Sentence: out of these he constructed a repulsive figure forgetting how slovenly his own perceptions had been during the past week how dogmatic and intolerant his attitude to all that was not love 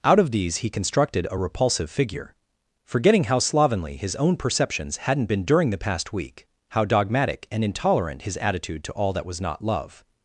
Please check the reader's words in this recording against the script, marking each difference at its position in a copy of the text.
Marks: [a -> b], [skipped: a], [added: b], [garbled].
out of these he constructed a repulsive figure forgetting how slovenly his own perceptions [had -> hadn't] been during the past week how dogmatic and intolerant his attitude to all that was not love